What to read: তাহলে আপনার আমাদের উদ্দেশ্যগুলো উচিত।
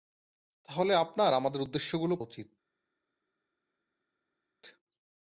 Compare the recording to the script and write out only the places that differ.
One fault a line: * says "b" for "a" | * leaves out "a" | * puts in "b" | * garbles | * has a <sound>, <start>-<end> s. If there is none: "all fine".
all fine